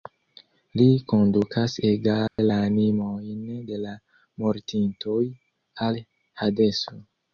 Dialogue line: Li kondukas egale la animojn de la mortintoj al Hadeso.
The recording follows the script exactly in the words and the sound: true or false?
false